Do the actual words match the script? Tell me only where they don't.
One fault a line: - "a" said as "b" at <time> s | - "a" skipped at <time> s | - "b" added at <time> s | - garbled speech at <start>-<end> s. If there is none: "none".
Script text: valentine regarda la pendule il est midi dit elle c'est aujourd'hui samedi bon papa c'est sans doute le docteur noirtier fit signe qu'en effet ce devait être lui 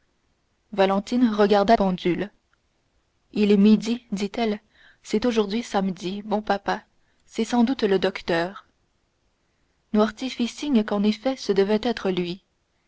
- "la" skipped at 1.8 s